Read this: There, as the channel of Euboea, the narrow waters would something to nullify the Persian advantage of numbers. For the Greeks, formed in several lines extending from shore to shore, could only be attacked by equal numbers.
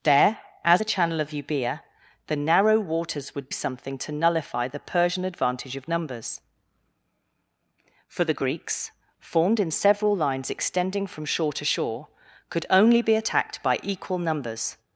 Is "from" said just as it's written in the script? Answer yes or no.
yes